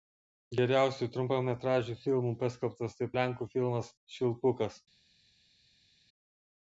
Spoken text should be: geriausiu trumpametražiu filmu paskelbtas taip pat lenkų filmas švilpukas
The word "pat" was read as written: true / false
false